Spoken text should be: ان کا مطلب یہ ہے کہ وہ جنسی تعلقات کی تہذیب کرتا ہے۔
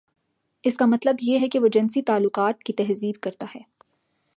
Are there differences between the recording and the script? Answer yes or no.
yes